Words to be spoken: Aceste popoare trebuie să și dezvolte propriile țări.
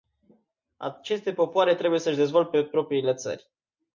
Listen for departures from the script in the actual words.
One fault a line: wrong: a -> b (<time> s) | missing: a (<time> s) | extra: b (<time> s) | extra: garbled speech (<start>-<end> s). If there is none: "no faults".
no faults